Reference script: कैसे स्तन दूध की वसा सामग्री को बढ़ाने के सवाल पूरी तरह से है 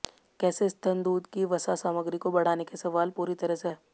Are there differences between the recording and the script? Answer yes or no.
no